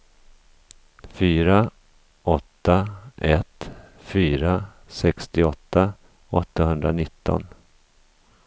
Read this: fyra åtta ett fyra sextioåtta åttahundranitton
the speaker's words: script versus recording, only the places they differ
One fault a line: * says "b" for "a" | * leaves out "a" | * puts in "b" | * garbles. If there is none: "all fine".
all fine